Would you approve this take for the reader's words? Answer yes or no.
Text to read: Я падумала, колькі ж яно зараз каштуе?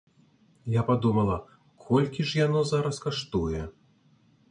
yes